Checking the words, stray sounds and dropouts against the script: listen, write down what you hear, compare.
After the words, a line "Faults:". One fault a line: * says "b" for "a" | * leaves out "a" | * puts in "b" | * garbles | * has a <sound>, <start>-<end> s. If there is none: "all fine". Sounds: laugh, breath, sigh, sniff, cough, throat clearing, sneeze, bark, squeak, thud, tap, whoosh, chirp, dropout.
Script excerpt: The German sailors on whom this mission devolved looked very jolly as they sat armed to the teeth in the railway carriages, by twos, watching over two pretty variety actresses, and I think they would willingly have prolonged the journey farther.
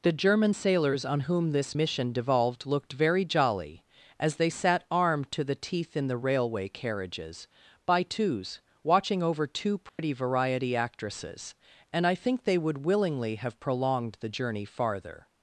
The German sailors on whom this mission devolved looked very jolly as they sat armed to the teeth in the railway carriages, by twos, watching over two pretty variety actresses, and I think they would willingly have prolonged the journey farther.
Faults:
* has a dropout, 9.9-10.0 s